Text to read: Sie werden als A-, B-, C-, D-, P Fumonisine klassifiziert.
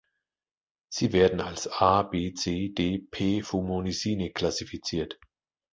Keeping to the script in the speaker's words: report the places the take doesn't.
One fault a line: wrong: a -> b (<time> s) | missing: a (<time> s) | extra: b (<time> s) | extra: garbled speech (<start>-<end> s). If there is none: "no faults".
no faults